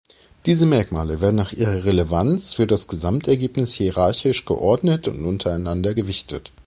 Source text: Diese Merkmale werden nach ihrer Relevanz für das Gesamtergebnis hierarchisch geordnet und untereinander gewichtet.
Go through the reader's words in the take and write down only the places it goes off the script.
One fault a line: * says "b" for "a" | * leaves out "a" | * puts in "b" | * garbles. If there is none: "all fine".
all fine